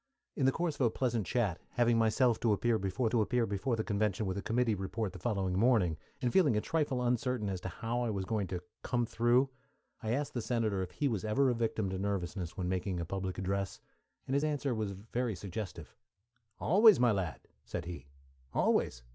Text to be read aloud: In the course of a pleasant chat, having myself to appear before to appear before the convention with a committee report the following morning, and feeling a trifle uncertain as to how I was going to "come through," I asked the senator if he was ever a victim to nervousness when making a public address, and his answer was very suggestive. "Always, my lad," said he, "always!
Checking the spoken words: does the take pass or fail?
pass